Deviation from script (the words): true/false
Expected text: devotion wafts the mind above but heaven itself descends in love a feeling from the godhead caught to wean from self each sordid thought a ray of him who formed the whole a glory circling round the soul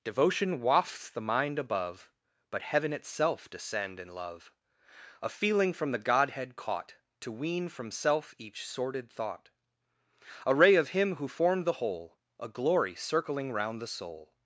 true